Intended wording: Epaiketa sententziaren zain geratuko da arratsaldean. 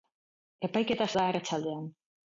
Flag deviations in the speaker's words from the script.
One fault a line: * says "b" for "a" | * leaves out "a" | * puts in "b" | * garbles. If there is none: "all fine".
* leaves out "sententziaren zain geratuko"